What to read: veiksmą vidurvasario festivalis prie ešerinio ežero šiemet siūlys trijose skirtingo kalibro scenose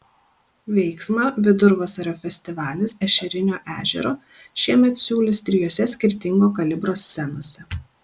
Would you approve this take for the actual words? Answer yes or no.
no